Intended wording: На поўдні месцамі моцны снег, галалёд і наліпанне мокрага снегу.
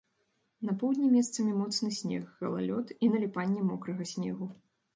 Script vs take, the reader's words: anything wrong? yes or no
no